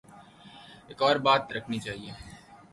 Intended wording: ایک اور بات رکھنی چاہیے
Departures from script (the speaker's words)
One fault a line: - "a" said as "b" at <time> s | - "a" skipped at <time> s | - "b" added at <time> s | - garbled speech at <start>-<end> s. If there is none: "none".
none